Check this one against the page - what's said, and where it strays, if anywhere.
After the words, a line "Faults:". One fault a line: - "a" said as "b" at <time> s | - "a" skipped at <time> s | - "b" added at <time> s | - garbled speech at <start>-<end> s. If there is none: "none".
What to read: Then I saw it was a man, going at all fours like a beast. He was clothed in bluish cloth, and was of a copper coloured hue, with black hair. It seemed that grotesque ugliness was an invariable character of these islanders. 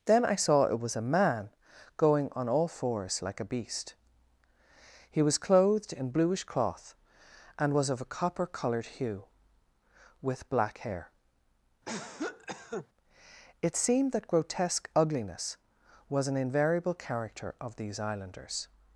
Then I saw it was a man, going on all fours like a beast. He was clothed in bluish cloth, and was of a copper coloured hue, with black hair. It seemed that grotesque ugliness was an invariable character of these islanders.
Faults:
- "at" said as "on" at 2.3 s